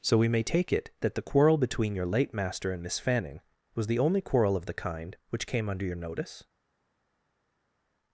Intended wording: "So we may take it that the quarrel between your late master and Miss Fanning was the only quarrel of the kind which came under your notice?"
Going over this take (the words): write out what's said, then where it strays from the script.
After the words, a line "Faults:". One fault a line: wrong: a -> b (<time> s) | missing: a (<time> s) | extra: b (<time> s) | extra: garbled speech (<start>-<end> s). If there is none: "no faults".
"So we may take it that the quarrel between your late master and Miss Fanning was the only quarrel of the kind which came under your notice?"
Faults:
no faults